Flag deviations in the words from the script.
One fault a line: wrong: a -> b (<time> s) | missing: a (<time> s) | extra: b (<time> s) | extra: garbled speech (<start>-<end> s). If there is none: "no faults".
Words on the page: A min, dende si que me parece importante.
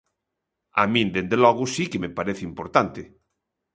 extra: logo (1.4 s)